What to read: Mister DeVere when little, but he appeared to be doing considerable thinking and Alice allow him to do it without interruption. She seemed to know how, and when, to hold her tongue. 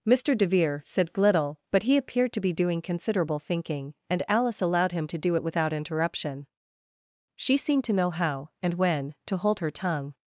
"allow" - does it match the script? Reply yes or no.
no